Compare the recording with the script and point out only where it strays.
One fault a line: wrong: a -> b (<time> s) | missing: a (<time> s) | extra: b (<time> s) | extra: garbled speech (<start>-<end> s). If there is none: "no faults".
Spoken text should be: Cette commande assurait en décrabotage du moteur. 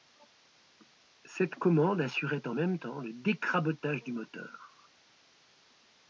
extra: même temps le (2.5 s)